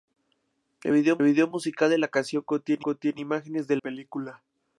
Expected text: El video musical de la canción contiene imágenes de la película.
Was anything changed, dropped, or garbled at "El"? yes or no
no